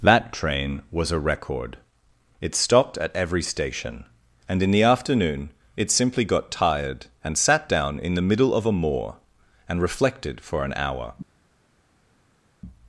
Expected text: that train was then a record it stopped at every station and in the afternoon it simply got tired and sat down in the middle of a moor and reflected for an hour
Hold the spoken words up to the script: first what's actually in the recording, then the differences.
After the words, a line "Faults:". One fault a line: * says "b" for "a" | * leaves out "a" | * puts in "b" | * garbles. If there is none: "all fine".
that train was a record it stopped at every station and in the afternoon it simply got tired and sat down in the middle of a moor and reflected for an hour
Faults:
* leaves out "then"